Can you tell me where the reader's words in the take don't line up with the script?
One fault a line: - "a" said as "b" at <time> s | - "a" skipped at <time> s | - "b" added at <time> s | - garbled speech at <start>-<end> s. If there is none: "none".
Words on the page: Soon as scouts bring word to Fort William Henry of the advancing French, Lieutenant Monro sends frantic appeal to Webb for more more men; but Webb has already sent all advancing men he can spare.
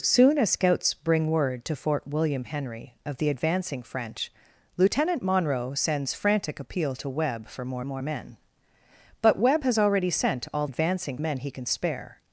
none